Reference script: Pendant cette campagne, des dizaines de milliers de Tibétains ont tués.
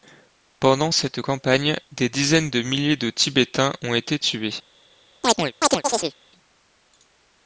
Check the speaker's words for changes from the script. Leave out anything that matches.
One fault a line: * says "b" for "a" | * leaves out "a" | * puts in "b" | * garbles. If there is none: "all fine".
* puts in "été"